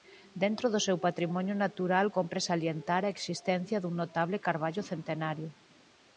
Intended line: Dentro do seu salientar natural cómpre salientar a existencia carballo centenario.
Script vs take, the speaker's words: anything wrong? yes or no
yes